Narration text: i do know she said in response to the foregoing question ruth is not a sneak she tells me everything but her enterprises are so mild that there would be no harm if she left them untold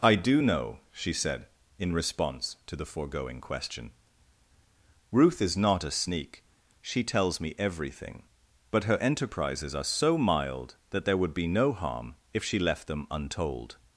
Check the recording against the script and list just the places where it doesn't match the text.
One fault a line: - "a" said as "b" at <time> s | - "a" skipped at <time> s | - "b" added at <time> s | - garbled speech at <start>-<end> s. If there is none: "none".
none